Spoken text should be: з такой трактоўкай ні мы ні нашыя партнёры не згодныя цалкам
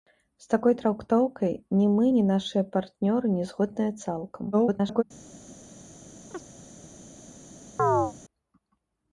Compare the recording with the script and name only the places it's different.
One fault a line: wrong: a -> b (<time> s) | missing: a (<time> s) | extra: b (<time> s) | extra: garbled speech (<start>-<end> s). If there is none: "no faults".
extra: garbled speech (4.5-5.0 s)